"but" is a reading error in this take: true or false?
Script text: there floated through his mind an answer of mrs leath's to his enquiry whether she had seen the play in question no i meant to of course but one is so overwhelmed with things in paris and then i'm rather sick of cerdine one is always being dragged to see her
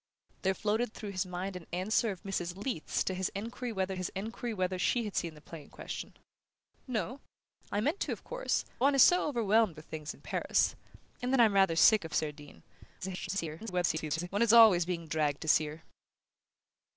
true